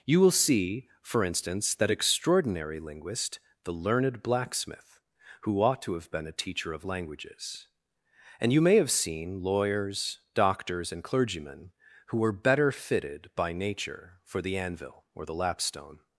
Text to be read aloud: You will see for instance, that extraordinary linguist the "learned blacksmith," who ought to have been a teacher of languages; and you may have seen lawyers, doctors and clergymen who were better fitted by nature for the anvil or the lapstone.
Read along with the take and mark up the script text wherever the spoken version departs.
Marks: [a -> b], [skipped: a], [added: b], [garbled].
You will see for instance, that extraordinary linguist the "learned blacksmith," who ought to have been a teacher of languages; and you may have seen lawyers, doctors and clergymen who were better fitted by nature for the anvil or the lapstone.